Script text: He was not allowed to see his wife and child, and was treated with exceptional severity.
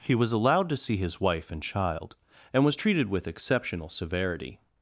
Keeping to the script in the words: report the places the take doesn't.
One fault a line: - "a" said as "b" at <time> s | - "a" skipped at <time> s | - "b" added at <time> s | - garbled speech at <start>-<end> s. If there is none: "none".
- "not" skipped at 0.3 s